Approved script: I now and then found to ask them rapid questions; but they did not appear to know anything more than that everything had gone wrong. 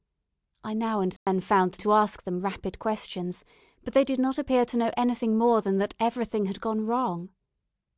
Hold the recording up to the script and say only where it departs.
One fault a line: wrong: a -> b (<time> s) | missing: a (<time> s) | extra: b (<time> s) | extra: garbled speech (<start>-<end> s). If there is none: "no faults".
no faults